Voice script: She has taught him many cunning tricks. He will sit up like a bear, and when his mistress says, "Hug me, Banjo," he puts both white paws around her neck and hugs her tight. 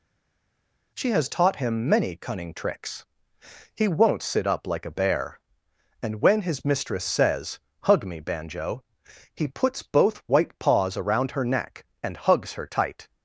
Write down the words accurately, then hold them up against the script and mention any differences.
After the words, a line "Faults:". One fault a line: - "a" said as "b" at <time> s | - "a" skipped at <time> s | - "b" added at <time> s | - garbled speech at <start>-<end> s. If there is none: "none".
She has taught him many cunning tricks. He won't sit up like a bear, and when his mistress says, "Hug me, Banjo," he puts both white paws around her neck and hugs her tight.
Faults:
- "will" said as "won't" at 3.9 s